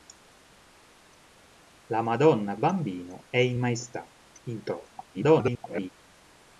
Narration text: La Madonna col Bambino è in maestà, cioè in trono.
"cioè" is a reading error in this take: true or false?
true